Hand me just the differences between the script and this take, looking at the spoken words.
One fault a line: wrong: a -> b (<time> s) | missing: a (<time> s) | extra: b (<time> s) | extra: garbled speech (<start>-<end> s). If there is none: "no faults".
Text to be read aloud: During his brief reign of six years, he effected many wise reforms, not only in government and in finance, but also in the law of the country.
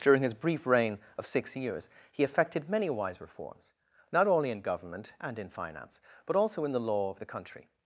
no faults